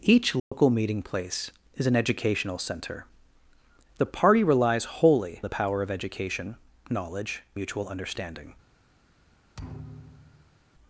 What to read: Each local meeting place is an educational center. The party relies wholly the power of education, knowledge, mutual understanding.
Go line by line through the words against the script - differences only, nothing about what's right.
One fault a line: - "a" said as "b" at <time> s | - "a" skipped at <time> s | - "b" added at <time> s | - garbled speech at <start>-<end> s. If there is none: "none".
none